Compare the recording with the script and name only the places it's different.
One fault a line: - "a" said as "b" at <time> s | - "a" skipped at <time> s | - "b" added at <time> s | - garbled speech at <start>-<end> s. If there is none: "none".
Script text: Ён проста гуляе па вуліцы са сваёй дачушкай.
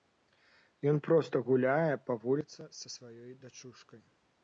none